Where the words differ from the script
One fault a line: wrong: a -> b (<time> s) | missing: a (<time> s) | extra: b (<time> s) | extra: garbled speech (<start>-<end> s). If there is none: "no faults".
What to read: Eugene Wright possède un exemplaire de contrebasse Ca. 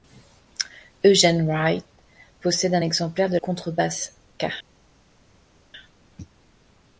no faults